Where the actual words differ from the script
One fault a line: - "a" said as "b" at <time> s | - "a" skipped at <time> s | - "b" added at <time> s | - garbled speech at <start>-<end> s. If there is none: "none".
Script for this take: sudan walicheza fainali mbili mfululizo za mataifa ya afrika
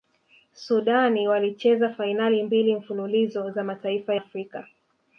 - "ya" skipped at 4.2 s